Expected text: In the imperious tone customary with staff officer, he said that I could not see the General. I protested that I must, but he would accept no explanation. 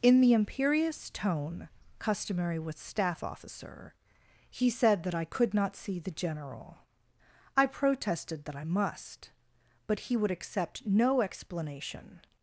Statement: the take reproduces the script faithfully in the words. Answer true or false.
true